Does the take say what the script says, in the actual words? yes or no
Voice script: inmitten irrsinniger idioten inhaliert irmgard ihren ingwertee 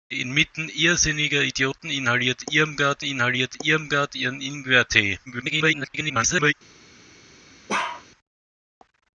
no